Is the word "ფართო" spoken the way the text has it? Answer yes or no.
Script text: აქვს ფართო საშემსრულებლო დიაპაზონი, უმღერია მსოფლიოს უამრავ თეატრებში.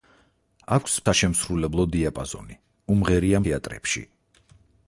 no